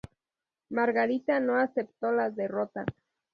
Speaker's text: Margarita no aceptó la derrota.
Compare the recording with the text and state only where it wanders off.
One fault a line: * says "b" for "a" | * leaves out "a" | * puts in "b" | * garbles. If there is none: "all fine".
all fine